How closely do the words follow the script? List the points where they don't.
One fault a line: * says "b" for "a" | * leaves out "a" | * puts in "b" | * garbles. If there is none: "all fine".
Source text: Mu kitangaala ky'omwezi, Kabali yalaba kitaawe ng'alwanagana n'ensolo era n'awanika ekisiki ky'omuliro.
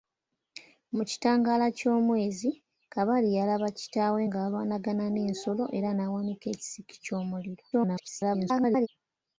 * garbles